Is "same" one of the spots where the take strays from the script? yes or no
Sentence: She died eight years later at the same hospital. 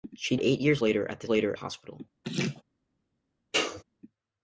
yes